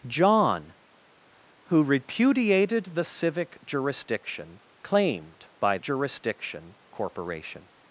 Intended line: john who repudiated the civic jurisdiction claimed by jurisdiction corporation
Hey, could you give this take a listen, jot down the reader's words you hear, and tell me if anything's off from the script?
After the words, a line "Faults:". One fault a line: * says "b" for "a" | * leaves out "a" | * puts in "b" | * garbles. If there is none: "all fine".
john who repudiated the civic jurisdiction claimed by jurisdiction corporation
Faults:
all fine